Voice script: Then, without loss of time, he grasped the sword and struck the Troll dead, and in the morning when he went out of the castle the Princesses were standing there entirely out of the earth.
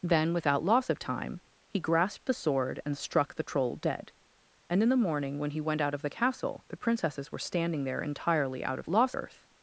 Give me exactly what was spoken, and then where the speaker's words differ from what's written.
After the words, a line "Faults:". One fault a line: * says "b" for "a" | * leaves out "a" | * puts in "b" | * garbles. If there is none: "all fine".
Then, without loss of time, he grasped the sword and struck the Troll dead, and in the morning when he went out of the castle the Princesses were standing there entirely out of loss earth.
Faults:
* says "loss" for "the"